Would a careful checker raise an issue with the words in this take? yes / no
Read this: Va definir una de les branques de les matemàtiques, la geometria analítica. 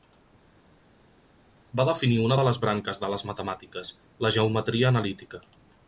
no